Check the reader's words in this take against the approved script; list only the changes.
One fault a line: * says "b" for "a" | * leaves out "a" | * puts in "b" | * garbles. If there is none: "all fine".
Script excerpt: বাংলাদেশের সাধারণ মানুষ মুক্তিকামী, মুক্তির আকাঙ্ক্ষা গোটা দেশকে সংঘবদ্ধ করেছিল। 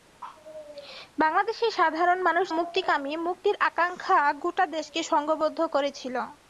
all fine